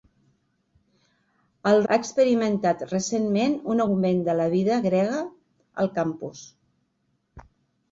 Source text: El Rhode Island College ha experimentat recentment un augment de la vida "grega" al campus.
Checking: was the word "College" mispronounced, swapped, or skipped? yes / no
yes